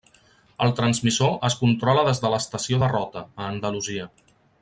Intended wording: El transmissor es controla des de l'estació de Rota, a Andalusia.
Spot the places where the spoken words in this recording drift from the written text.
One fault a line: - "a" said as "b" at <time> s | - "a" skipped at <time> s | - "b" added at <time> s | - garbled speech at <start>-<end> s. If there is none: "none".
none